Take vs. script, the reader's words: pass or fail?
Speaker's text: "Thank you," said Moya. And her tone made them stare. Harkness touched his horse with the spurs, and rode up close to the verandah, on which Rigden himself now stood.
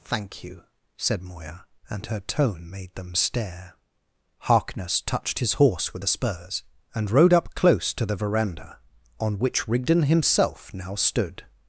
pass